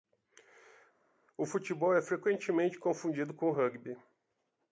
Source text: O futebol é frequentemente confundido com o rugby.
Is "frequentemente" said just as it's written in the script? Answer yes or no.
yes